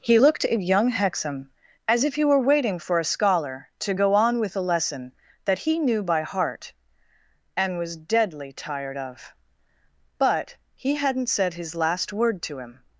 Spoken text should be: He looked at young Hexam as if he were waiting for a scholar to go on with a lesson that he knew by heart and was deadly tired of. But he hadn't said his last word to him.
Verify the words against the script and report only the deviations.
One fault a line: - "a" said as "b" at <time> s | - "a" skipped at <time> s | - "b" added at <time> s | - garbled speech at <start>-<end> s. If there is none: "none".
none